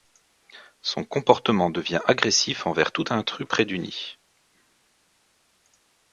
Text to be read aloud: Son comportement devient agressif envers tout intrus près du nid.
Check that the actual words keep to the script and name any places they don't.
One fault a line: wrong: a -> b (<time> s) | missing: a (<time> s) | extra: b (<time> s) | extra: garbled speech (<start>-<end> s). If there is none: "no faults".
no faults